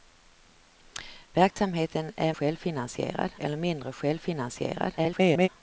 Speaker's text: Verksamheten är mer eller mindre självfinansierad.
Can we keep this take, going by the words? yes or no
no